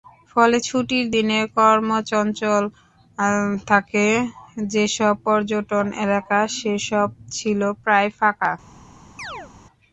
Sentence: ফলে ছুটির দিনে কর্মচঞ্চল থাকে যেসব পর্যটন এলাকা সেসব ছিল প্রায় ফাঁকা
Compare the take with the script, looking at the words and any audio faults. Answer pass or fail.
fail